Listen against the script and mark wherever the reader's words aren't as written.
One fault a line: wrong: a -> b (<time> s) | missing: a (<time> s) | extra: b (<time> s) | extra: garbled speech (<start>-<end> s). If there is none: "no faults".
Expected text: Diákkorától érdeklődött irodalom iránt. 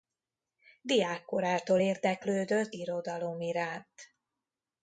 no faults